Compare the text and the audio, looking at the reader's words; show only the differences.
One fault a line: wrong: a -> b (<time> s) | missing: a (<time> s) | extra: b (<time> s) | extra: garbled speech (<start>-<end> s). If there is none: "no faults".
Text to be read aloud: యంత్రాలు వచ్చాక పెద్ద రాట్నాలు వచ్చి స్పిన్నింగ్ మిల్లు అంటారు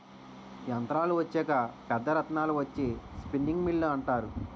no faults